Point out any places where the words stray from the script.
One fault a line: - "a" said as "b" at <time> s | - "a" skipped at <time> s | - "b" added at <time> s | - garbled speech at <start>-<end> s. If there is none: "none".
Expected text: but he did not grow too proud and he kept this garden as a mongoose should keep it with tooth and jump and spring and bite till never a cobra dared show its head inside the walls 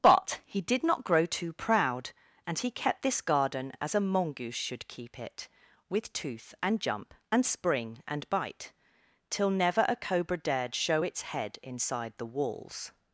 none